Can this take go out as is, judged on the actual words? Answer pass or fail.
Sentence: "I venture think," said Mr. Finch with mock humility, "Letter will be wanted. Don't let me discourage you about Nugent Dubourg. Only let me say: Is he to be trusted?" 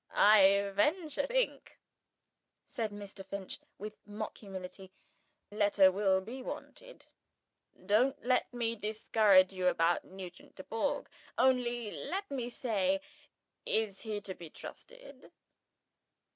pass